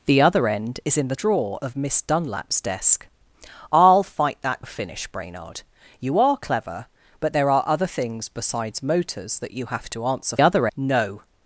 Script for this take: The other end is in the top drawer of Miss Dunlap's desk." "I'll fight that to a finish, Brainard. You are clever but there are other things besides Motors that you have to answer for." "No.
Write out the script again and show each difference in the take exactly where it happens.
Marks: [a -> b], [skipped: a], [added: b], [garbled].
The other end is in the [skipped: top] drawer of Miss Dunlap's desk." "I'll fight that [skipped: to] a finish, Brainard. You are clever but there are other things besides Motors that you have to answer [for." -> other] "No.